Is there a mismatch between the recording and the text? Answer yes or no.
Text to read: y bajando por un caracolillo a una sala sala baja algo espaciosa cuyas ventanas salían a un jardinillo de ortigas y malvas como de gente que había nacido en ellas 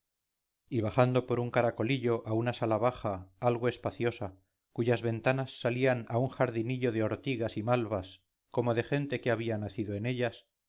yes